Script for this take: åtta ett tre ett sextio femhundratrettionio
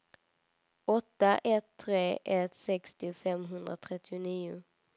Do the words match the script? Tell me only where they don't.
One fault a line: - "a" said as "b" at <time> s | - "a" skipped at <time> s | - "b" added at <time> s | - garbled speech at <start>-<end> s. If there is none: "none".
none